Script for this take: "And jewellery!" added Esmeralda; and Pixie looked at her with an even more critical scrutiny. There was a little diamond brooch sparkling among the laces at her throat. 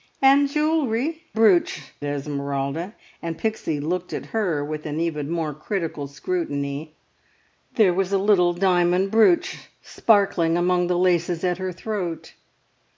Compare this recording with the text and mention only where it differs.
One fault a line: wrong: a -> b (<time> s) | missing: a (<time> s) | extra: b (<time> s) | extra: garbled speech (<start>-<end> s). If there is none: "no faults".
wrong: added -> brooch (1.4 s)